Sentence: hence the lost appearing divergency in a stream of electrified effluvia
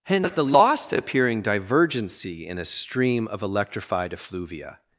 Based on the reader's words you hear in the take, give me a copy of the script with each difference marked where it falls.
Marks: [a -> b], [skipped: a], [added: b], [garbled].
hence the lost appearing divergency in a stream of electrified effluvia